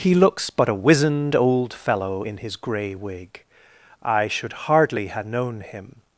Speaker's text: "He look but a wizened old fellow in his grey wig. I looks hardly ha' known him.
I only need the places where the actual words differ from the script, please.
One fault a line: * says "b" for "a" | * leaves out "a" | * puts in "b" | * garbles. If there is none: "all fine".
* says "looks" for "look"
* says "should" for "looks"